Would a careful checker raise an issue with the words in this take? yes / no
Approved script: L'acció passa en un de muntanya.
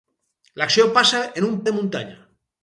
no